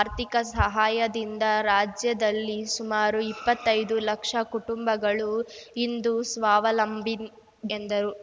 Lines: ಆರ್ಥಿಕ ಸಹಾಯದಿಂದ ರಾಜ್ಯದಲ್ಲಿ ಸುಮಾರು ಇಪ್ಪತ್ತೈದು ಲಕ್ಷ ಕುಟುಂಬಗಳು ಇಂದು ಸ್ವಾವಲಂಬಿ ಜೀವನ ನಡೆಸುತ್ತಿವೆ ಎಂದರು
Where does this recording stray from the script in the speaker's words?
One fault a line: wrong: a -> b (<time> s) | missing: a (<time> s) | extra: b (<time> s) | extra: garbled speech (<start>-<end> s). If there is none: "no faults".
missing: ಜೀವನ ನಡೆಸುತ್ತಿವೆ (7.2 s)